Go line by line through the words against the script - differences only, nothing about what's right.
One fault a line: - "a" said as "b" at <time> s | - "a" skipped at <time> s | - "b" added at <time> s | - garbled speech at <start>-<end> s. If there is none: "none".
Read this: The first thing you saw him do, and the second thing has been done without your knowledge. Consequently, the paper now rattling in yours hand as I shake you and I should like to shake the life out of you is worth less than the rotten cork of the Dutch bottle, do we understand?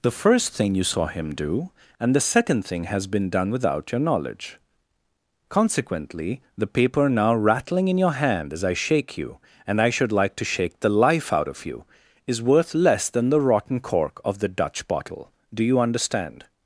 - "yours" said as "your" at 8.0 s
- "we" said as "you" at 15.6 s